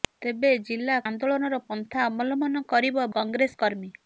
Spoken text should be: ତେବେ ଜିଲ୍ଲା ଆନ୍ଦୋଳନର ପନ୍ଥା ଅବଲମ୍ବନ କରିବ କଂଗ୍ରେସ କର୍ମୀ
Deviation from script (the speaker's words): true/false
false